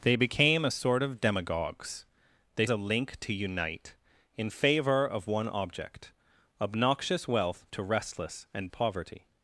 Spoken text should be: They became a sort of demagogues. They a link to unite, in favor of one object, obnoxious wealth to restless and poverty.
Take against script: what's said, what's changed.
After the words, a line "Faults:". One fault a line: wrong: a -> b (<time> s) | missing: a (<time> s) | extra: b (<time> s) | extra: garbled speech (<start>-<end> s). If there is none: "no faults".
They became a sort of demagogues. They a link to unite, in favor of one object, obnoxious wealth to restless and poverty.
Faults:
no faults